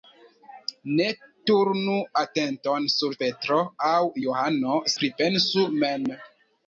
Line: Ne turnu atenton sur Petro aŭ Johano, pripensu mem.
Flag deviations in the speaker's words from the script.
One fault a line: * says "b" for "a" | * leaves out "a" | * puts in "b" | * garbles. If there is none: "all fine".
all fine